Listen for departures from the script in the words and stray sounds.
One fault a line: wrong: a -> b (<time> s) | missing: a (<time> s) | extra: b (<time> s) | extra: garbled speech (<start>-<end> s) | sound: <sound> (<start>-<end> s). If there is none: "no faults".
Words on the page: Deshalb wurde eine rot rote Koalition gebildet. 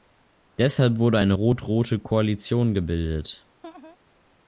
sound: laugh (3.6-4.0 s)